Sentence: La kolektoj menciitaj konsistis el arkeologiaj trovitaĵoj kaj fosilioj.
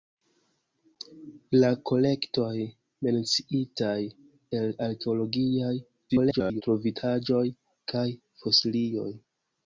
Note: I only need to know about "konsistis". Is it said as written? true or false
false